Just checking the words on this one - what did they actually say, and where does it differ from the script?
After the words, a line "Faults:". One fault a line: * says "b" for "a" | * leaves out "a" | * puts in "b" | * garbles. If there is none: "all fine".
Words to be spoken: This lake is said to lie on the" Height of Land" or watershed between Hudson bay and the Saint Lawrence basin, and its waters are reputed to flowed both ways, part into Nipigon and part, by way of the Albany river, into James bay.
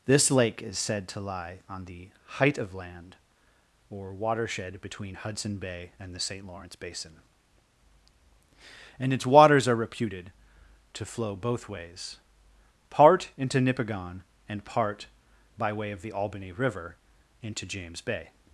This lake is said to lie on the" Height of Land" or watershed between Hudson bay and the Saint Lawrence basin, and its waters are reputed to flow both ways, part into Nipigon and part, by way of the Albany river, into James bay.
Faults:
* says "flow" for "flowed"